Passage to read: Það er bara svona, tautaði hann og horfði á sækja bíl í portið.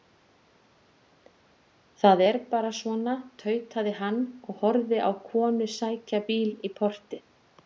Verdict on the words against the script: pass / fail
fail